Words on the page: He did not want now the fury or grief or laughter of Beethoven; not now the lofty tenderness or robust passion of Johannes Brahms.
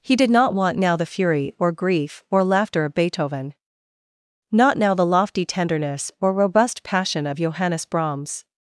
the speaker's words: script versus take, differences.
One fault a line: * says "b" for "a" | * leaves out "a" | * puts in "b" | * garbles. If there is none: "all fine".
all fine